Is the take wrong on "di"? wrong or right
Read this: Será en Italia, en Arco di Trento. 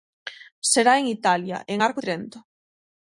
wrong